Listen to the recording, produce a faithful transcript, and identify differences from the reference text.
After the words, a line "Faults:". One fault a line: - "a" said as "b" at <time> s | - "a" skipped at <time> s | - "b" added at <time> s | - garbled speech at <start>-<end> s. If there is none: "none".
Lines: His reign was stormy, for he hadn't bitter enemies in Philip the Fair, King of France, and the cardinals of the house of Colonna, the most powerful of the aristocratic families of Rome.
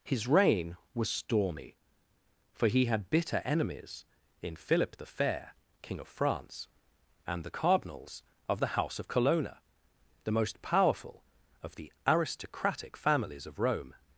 His reign was stormy, for he had bitter enemies in Philip the Fair, King of France, and the cardinals of the house of Colonna, the most powerful of the aristocratic families of Rome.
Faults:
- "hadn't" said as "had" at 2.9 s